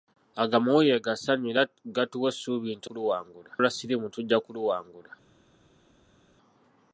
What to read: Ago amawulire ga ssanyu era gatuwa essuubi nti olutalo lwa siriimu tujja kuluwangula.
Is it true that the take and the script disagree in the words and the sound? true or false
true